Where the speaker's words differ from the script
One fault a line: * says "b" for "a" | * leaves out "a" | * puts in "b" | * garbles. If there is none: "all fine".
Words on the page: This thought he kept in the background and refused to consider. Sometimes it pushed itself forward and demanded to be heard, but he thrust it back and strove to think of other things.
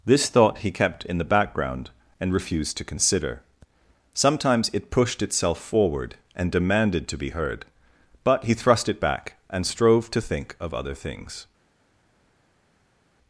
all fine